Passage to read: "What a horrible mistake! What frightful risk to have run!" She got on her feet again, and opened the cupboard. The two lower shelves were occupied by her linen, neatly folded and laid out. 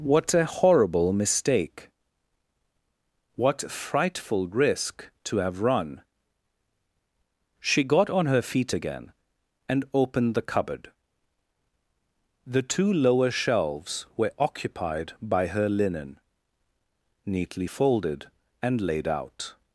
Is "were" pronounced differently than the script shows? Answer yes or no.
no